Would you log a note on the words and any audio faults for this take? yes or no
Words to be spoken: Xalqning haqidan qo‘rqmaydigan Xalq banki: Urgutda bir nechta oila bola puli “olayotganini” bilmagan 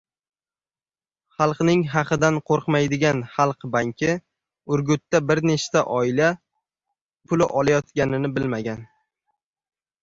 yes